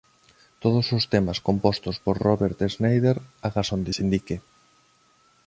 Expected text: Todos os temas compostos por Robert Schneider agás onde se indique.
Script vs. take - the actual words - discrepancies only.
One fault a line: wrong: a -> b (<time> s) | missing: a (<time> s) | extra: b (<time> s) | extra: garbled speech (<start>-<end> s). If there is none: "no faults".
no faults